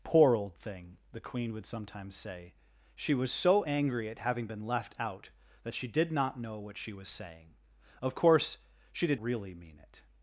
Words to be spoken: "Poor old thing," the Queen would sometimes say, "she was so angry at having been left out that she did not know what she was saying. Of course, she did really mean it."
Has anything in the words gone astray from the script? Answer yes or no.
no